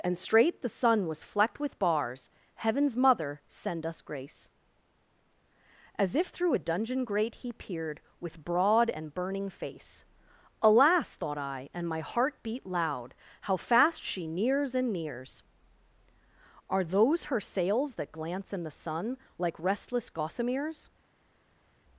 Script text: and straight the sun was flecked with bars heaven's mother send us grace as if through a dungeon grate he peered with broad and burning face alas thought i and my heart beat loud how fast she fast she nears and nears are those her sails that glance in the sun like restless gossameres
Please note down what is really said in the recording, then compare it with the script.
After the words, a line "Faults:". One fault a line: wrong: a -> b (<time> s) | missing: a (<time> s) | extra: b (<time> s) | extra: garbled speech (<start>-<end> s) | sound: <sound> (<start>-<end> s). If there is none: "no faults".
and straight the sun was flecked with bars heaven's mother send us grace as if through a dungeon grate he peered with broad and burning face alas thought i and my heart beat loud how fast she nears and nears are those her sails that glance in the sun like restless gossameres
Faults:
missing: fast she (14.2 s)